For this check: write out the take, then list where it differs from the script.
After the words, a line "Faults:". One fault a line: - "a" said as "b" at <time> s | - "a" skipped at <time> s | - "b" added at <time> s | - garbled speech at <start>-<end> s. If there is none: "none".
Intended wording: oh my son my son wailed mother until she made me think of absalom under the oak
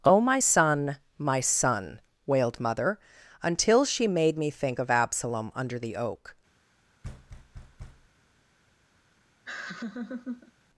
oh my son my son wailed mother until she made me think of absalom under the oak
Faults:
none